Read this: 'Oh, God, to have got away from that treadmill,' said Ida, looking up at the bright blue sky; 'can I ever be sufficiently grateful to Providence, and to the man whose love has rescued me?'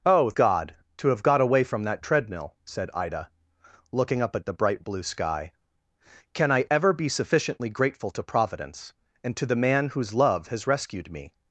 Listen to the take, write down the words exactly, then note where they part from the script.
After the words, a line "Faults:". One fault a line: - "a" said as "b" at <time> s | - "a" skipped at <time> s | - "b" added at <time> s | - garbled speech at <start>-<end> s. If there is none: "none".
'Oh, God, to have got away from that treadmill,' said Ida, looking up at the bright blue sky; 'can I ever be sufficiently grateful to Providence, and to the man whose love has rescued me?'
Faults:
none